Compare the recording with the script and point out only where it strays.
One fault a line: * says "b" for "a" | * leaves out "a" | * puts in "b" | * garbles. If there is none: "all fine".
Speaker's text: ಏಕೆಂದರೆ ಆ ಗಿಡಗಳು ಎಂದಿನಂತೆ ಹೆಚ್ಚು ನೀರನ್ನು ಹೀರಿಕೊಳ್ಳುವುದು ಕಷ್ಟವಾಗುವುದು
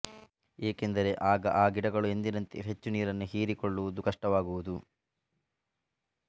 * puts in "ಆಗ"